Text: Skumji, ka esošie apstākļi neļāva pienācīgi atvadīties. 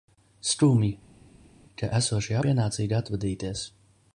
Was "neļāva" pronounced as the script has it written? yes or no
no